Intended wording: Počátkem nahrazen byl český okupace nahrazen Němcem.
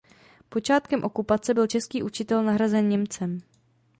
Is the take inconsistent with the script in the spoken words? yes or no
yes